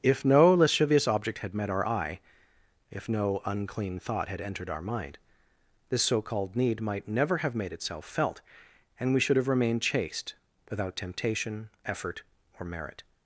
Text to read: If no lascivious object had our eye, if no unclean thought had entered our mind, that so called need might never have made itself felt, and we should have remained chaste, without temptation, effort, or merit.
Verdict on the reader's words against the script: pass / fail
fail